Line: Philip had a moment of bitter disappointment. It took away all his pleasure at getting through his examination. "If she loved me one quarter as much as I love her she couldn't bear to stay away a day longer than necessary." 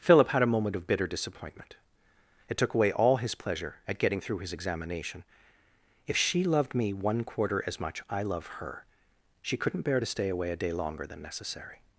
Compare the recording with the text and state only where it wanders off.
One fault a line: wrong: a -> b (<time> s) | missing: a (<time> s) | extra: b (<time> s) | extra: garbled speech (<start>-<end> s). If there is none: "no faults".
missing: as (8.0 s)